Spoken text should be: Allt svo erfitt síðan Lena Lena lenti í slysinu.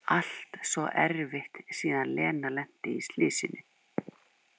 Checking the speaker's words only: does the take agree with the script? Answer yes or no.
no